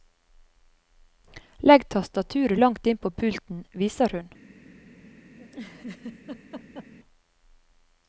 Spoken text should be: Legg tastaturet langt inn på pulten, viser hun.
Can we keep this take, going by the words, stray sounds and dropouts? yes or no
no